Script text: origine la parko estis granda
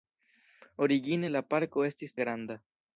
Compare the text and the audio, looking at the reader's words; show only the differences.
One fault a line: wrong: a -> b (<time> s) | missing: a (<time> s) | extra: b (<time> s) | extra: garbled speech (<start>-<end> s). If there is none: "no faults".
no faults